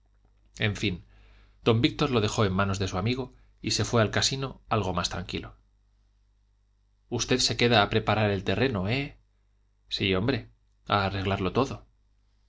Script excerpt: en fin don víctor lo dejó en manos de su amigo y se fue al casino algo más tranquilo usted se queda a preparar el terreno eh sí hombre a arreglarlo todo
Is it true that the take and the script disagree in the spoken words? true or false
false